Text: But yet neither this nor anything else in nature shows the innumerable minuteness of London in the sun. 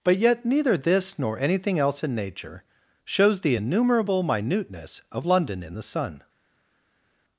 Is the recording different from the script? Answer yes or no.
no